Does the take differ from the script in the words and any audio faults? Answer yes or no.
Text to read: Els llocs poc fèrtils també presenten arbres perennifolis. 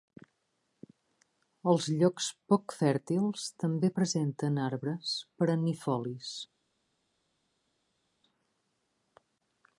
no